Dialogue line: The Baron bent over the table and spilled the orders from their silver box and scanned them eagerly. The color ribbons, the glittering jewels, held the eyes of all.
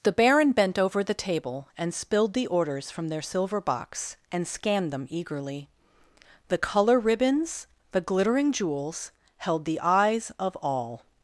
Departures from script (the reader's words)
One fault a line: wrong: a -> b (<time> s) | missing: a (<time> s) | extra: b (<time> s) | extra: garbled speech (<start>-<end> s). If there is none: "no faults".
no faults